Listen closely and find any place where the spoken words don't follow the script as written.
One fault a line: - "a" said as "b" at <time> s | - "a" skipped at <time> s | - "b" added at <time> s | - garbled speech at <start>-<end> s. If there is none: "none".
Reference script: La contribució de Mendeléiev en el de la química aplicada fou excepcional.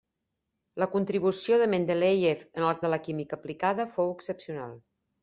none